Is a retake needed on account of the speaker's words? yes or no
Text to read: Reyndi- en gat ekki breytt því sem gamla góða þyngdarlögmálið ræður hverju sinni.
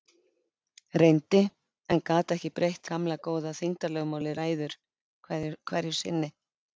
yes